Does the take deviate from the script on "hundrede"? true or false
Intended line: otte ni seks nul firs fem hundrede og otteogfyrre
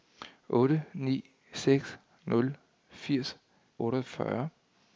true